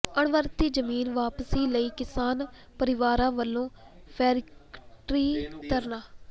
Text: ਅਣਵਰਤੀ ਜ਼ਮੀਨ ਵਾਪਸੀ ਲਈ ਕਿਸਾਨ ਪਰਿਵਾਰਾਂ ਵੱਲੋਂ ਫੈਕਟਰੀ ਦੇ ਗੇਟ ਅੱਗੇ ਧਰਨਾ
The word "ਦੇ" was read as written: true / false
false